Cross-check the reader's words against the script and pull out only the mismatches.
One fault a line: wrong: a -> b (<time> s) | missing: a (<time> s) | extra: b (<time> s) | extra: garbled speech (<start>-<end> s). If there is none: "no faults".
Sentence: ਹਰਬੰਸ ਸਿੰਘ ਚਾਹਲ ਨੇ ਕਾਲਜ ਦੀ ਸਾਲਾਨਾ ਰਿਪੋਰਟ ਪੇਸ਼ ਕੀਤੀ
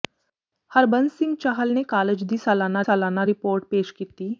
extra: ਸਾਲਾਨਾ (2.8 s)